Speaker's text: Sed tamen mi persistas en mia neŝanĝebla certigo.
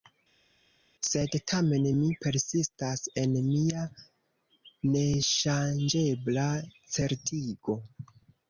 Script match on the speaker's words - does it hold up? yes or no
yes